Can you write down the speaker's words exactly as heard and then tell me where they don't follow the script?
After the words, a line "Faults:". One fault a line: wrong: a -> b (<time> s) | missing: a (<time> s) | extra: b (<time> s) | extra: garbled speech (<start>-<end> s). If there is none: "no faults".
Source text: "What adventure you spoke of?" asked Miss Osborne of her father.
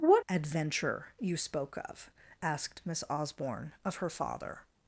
"What adventure you spoke of?" asked Miss Osborne of her father.
Faults:
no faults